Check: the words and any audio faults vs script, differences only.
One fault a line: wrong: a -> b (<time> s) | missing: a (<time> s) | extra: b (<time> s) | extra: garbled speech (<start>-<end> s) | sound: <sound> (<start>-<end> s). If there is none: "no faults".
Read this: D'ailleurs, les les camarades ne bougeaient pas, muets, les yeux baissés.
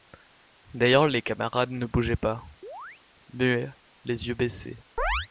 missing: les (1.2 s)
sound: chirp (2.6-3.0 s)
sound: chirp (5.0-5.3 s)